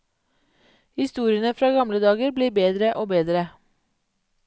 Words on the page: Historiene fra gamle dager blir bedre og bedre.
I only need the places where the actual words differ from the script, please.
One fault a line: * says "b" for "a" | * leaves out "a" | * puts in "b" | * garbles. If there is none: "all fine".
all fine